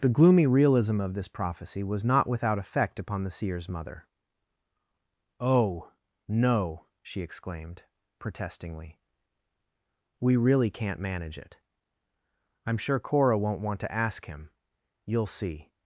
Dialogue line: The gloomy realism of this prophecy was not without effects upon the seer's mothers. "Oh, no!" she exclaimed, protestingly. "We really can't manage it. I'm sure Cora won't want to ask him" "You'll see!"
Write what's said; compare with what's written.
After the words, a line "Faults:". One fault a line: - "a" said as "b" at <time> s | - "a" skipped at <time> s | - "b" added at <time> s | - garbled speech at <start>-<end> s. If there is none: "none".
The gloomy realism of this prophecy was not without effect upon the seer's mother. "Oh, no!" she exclaimed, protestingly. "We really can't manage it. I'm sure Cora won't want to ask him" "You'll see!"
Faults:
- "effects" said as "effect" at 2.6 s
- "mothers" said as "mother" at 3.7 s